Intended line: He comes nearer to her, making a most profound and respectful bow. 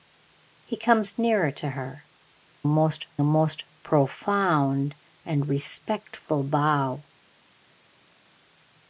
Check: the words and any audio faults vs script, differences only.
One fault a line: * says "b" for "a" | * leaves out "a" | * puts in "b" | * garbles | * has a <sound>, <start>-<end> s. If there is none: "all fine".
* says "most" for "making"